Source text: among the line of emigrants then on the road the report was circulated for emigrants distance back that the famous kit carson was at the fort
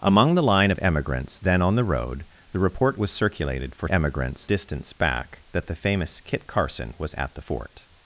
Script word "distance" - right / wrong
right